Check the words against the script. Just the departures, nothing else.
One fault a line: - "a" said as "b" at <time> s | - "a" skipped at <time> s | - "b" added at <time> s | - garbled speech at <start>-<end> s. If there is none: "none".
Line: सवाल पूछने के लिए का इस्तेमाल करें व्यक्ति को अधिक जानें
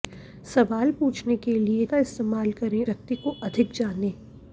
none